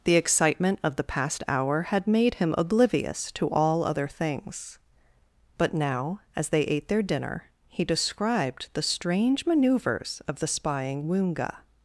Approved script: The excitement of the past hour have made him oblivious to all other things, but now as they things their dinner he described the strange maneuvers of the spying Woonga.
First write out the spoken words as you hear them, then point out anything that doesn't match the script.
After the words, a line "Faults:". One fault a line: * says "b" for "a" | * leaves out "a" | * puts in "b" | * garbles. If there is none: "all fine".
The excitement of the past hour had made him oblivious to all other things, but now as they ate their dinner he described the strange maneuvers of the spying Woonga.
Faults:
* says "had" for "have"
* says "ate" for "things"